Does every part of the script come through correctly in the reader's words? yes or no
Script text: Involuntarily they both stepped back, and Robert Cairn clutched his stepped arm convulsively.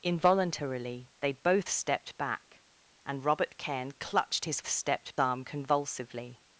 yes